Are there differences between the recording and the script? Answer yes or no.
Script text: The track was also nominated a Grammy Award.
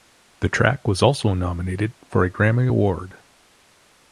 yes